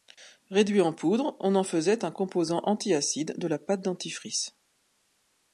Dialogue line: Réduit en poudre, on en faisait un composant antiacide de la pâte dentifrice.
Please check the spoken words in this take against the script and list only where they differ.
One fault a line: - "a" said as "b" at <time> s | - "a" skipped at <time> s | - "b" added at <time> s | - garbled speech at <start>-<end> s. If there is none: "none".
none